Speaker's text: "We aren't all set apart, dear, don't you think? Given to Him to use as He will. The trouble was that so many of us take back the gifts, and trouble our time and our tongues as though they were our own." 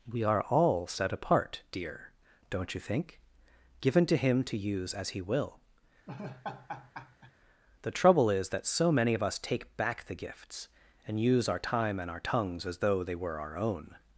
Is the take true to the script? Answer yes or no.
no